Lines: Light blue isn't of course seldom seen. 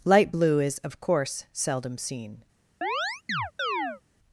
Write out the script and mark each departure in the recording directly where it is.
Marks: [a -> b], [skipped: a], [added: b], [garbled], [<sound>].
Light blue [isn't -> is] of course seldom seen. [chirp]